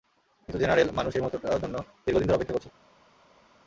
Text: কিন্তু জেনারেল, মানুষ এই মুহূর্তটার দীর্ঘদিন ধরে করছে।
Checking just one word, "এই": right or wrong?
right